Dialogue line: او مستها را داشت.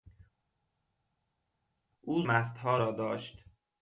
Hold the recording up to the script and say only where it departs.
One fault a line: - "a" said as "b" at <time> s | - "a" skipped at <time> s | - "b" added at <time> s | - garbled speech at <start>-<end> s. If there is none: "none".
none